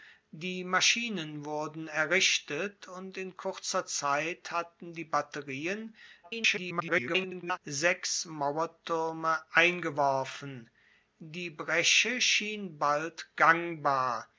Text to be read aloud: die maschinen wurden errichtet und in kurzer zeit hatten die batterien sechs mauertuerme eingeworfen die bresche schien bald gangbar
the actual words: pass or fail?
fail